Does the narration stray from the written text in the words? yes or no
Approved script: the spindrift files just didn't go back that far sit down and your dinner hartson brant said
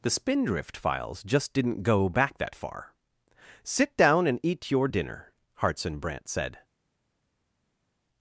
yes